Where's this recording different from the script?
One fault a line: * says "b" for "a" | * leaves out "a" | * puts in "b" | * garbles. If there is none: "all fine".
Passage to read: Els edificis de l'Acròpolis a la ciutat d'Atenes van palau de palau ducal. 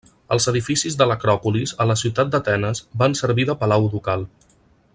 * says "servir" for "palau"